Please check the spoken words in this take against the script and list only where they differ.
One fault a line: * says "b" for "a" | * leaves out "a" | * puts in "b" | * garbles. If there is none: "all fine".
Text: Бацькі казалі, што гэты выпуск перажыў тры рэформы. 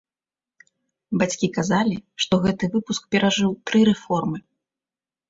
all fine